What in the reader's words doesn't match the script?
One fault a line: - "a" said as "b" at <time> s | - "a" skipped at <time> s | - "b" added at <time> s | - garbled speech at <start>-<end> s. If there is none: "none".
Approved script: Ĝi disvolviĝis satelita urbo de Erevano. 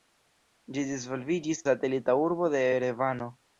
none